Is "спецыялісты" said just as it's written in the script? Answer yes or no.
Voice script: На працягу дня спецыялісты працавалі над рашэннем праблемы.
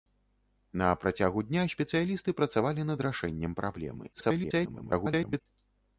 yes